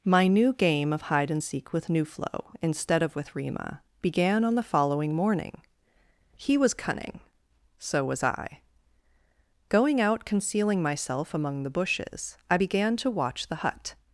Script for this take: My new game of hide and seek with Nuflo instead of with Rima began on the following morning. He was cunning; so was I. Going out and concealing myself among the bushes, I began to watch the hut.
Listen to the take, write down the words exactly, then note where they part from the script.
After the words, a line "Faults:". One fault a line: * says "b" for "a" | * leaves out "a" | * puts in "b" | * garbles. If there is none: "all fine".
My new game of hide and seek with Nuflo instead of with Rima began on the following morning. He was cunning; so was I. Going out concealing myself among the bushes, I began to watch the hut.
Faults:
* leaves out "and"